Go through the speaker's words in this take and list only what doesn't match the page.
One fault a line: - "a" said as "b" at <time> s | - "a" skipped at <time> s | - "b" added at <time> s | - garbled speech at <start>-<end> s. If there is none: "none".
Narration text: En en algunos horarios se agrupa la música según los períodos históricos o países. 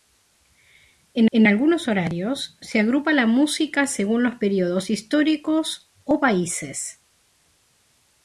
none